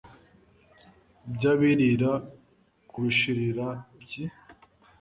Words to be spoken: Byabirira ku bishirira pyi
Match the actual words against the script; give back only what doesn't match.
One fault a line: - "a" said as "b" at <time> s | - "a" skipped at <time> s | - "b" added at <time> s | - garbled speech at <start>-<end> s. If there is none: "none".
none